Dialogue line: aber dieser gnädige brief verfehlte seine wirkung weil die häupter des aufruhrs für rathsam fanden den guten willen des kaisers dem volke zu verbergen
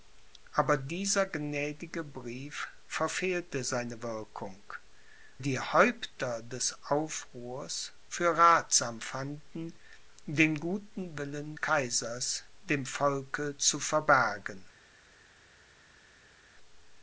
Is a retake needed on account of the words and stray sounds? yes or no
yes